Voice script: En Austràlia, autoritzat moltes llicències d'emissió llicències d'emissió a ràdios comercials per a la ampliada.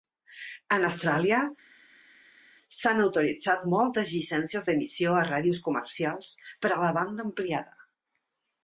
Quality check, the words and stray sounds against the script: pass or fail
fail